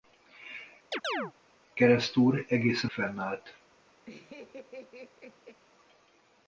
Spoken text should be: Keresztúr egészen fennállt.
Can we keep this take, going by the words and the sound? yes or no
no